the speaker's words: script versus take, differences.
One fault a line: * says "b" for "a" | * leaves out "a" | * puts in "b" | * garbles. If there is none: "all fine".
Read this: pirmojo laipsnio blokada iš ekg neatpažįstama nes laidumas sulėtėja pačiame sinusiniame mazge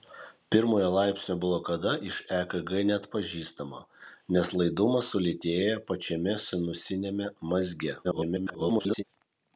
* garbles